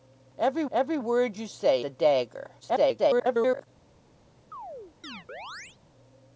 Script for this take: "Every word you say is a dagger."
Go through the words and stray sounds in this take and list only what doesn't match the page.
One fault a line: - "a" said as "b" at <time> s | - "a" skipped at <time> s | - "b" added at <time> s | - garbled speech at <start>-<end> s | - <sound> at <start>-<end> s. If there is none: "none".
- "every" added at 0.7 s
- "is" skipped at 1.9 s
- garbled speech at 2.6-3.7 s
- chirp at 4.5-5.8 s